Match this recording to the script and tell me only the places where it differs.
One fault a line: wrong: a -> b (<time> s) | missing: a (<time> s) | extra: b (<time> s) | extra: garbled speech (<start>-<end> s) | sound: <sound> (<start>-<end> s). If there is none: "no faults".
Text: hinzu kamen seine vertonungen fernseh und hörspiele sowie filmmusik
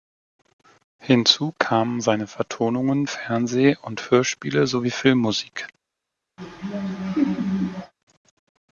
sound: laugh (6.4-7.9 s)